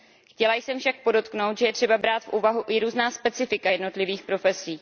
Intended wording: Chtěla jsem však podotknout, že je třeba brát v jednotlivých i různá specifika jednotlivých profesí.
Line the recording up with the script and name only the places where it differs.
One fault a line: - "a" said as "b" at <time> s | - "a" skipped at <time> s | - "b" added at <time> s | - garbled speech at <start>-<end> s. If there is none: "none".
- "jednotlivých" said as "úvahu" at 2.3 s